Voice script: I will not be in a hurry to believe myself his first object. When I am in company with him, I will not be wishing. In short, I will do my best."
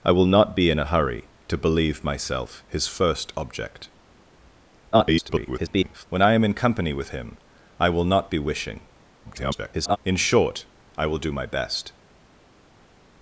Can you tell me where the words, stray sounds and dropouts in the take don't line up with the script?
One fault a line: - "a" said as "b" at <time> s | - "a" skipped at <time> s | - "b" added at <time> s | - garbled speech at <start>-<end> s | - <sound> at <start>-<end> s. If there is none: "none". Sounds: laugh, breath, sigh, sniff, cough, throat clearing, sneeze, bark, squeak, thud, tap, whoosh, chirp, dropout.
- garbled speech at 4.9-6.1 s
- garbled speech at 9.2-10.0 s